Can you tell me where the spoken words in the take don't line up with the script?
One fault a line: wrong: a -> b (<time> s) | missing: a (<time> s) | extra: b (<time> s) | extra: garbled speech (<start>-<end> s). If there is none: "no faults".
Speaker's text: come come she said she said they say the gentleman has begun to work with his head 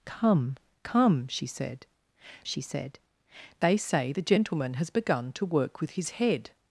no faults